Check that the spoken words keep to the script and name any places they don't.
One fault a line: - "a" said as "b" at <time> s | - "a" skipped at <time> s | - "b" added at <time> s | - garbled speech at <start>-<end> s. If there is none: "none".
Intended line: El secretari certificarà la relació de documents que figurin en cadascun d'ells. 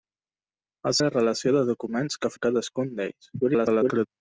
- "secretari certificarà" skipped at 0.9 s
- "figurin" skipped at 2.3 s
- garbled speech at 3.4-4.1 s